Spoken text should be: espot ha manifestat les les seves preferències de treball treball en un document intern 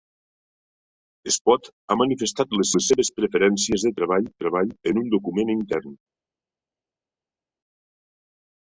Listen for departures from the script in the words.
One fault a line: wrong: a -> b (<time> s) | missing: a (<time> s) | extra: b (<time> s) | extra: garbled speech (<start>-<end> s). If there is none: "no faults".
no faults